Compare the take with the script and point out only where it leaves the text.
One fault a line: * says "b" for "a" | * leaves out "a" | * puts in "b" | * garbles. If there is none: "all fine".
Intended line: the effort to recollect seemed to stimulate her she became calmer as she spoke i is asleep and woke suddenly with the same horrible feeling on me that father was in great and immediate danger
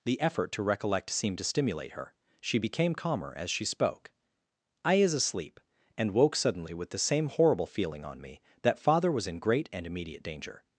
all fine